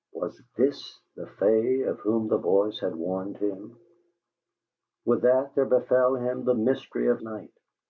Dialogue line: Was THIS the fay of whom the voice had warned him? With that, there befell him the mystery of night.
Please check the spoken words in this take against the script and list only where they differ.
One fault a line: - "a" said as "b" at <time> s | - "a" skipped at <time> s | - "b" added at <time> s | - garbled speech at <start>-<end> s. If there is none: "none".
none